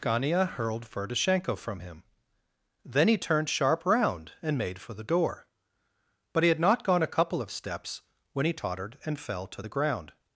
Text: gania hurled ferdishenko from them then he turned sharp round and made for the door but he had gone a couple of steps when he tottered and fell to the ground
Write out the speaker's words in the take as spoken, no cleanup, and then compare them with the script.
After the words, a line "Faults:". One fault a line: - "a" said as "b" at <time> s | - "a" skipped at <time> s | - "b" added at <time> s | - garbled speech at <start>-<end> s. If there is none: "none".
gania hurled ferdishenko from him then he turned sharp round and made for the door but he had not gone a couple of steps when he tottered and fell to the ground
Faults:
- "them" said as "him" at 1.8 s
- "not" added at 6.6 s